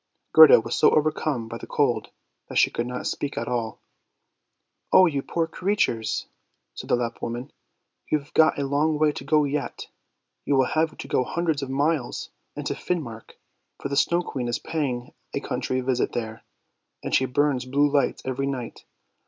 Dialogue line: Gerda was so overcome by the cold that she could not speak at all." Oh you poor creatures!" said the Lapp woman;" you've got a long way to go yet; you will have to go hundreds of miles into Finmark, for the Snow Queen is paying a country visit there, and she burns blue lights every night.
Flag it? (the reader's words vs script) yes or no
no